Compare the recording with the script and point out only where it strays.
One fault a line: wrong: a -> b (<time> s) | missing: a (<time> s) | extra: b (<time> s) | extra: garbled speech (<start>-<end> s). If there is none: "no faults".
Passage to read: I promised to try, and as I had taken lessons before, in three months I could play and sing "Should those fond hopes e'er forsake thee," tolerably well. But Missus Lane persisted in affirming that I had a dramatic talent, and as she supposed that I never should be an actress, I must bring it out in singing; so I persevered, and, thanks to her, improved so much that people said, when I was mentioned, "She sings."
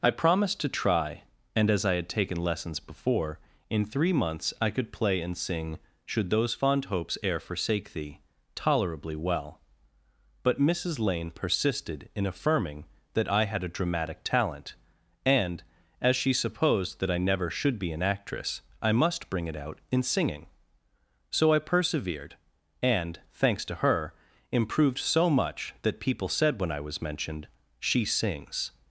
no faults